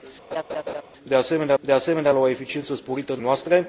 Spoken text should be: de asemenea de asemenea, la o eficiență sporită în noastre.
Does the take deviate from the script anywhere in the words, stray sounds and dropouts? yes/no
yes